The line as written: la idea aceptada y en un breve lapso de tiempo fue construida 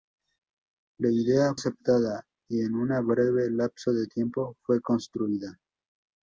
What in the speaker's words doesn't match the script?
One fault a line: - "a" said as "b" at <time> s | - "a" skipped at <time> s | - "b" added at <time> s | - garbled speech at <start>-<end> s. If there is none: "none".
none